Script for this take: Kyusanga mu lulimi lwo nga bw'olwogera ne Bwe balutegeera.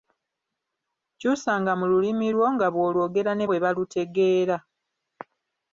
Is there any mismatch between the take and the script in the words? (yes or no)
no